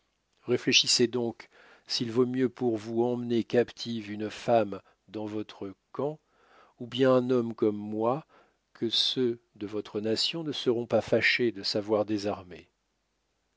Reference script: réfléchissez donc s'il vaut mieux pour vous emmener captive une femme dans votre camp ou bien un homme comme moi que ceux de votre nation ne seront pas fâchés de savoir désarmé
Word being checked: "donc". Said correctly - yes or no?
yes